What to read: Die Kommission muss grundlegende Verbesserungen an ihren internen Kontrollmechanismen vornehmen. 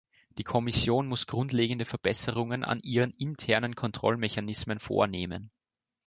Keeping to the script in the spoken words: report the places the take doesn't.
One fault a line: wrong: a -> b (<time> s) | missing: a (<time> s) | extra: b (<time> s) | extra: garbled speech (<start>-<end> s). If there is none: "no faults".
no faults